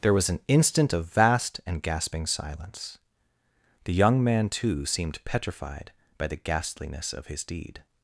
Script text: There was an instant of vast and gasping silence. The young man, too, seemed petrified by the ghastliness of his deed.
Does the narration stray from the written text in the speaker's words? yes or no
no